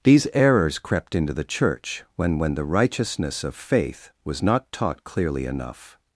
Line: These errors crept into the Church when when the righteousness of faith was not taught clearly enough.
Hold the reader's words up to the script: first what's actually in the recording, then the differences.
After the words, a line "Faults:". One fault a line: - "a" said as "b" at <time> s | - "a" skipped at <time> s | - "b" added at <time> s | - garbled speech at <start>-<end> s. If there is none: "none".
These errors crept into the Church when when the righteousness of faith was not taught clearly enough.
Faults:
none